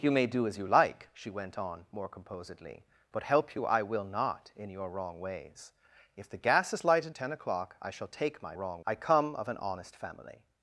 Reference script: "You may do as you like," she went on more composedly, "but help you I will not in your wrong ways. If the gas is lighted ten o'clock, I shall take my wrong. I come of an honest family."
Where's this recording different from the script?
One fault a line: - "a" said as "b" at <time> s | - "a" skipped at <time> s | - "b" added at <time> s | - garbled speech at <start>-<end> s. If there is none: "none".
none